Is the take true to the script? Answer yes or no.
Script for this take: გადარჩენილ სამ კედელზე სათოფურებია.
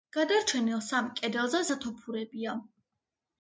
yes